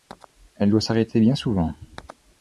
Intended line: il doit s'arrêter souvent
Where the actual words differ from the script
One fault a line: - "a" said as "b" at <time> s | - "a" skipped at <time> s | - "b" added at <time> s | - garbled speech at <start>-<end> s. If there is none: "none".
- "il" said as "elle" at 0.6 s
- "bien" added at 1.2 s